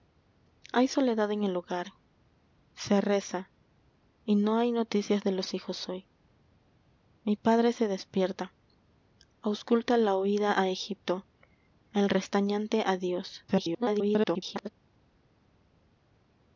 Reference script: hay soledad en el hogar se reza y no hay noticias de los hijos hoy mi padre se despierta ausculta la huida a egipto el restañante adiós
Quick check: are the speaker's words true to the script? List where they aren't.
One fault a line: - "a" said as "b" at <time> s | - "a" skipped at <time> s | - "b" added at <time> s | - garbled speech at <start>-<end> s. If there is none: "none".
- garbled speech at 13.5-14.7 s